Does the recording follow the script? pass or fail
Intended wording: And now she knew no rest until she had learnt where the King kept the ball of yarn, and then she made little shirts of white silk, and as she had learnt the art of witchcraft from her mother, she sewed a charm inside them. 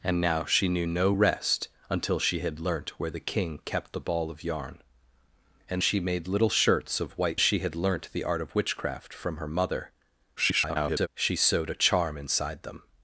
fail